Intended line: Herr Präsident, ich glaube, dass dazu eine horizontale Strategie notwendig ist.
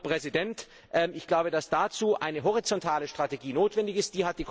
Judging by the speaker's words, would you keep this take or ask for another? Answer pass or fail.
pass